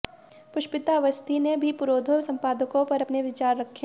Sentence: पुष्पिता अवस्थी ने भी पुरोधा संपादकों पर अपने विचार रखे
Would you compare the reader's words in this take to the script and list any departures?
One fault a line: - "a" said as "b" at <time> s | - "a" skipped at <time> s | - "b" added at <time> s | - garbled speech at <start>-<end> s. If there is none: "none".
none